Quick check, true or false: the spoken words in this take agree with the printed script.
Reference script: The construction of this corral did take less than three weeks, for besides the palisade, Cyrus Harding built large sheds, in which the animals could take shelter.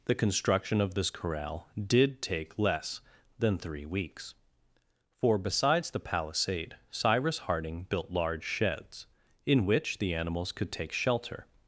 true